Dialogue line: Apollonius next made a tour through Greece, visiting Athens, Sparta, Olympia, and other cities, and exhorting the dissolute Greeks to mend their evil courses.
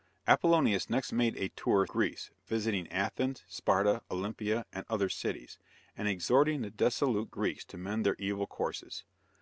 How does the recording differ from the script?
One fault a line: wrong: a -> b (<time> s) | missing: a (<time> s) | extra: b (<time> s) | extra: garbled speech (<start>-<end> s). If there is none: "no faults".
missing: through (1.9 s)